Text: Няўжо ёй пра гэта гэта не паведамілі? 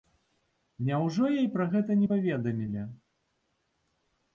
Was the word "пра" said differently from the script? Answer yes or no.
no